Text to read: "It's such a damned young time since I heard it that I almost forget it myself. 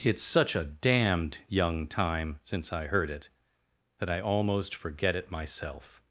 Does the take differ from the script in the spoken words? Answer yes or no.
no